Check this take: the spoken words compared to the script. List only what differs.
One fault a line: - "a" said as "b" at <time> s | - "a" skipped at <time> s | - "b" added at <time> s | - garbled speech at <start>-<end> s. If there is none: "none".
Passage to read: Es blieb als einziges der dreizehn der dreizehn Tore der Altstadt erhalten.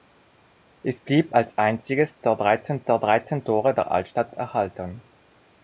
none